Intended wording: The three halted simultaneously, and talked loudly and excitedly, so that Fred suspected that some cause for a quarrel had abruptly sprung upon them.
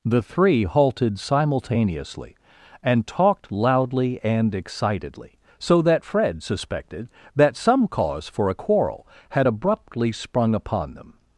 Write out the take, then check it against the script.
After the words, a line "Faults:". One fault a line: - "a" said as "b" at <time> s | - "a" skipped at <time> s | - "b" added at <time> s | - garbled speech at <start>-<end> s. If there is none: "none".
The three halted simultaneously, and talked loudly and excitedly, so that Fred suspected that some cause for a quarrel had abruptly sprung upon them.
Faults:
none